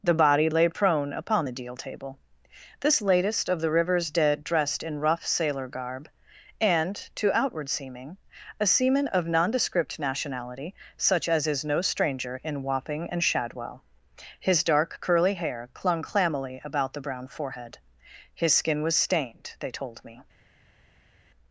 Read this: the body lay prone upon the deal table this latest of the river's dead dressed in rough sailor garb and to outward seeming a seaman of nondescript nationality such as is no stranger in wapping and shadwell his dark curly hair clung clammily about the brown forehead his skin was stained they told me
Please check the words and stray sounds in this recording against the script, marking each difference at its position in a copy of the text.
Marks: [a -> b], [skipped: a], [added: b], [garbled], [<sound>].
the body lay prone upon the deal table this latest of the river's dead dressed in rough sailor garb and to outward seeming a seaman of nondescript nationality such as is no stranger in wapping and shadwell his dark curly hair clung clammily about the brown forehead his skin was stained they told me